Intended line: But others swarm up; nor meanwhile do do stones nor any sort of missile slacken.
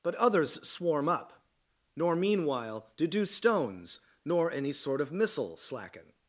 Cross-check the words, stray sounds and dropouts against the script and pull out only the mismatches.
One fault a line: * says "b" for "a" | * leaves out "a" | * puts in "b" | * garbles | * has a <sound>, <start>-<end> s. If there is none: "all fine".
all fine